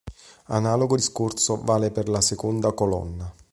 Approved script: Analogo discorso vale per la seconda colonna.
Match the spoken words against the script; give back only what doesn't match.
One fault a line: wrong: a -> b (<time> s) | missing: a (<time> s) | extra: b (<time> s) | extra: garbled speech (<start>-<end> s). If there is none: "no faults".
no faults